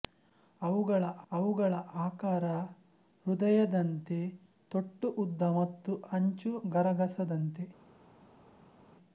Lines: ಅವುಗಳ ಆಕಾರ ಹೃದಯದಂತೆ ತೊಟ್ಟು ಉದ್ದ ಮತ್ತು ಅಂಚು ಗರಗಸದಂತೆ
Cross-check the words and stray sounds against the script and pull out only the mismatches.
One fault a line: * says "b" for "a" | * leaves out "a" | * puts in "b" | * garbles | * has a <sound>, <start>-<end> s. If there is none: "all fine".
* puts in "ಅವುಗಳ"